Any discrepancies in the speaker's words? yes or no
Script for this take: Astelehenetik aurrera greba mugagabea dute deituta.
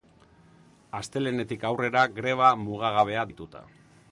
yes